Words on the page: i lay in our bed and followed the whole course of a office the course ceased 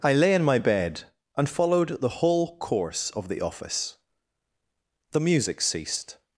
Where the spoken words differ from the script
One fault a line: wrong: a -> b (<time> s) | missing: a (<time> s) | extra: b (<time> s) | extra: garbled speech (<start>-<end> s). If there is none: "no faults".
wrong: our -> my (0.4 s)
wrong: a -> the (3.3 s)
wrong: course -> music (5.2 s)